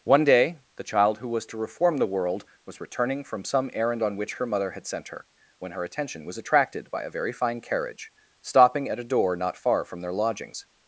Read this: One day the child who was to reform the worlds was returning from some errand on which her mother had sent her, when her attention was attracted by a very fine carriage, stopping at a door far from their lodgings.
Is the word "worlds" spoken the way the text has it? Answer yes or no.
no